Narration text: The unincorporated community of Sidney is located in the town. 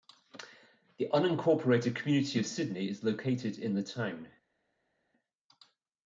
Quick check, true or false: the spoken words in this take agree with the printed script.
true